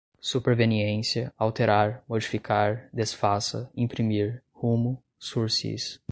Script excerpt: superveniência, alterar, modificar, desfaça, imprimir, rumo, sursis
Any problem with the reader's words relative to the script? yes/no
no